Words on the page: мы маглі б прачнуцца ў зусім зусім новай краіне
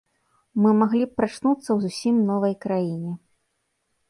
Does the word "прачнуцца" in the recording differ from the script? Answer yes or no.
no